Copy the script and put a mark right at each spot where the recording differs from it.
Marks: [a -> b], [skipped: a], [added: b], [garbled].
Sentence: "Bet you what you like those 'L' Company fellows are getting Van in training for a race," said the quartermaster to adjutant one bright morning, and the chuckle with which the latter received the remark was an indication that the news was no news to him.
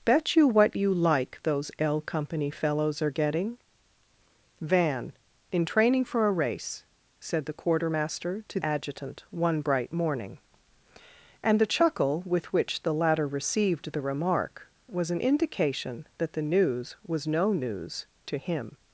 "Bet you what you like those 'L' Company fellows are getting Van in training for a race," said the quartermaster to adjutant one bright morning, and the chuckle with which the latter received the remark was an indication that the news was no news to him.